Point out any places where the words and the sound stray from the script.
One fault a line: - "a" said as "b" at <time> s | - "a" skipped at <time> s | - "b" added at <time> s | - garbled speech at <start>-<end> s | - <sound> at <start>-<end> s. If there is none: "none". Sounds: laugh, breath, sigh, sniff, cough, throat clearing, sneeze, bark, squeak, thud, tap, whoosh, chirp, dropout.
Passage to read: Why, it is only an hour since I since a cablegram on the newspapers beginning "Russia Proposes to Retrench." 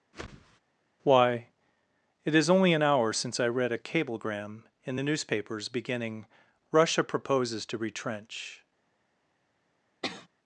- whoosh at 0.1-0.6 s
- "since" said as "read" at 3.5 s
- "on" said as "in" at 4.8 s
- sneeze at 10.0-10.3 s